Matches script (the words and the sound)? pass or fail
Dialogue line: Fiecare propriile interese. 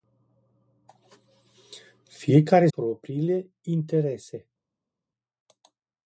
pass